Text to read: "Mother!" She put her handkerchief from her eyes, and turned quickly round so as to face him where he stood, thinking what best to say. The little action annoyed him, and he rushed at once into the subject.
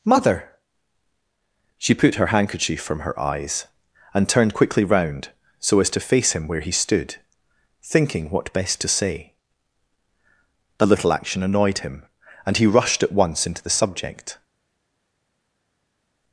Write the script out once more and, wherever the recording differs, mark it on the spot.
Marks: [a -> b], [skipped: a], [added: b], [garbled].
"Mother!" She put her handkerchief from her eyes, and turned quickly round so as to face him where he stood, thinking what best to say. The little action annoyed him, and he rushed at once into the subject.